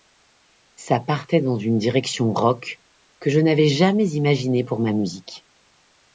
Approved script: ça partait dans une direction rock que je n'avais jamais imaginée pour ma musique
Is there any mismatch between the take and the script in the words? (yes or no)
no